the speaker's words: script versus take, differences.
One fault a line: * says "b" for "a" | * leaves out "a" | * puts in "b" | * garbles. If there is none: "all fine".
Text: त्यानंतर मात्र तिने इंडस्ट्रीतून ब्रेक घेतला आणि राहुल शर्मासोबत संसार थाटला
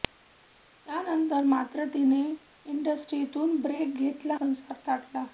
* leaves out "आणि राहुल शर्मासोबत"